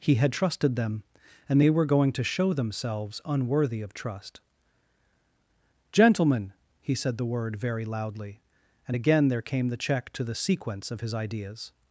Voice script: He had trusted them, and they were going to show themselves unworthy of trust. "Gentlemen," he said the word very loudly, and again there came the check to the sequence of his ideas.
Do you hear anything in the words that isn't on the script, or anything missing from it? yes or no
no